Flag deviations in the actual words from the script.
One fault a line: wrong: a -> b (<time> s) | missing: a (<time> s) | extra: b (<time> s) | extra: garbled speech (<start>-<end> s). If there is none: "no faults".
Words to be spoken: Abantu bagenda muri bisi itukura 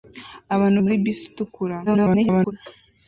missing: bagenda (0.8 s)
extra: garbled speech (1.9-2.5 s)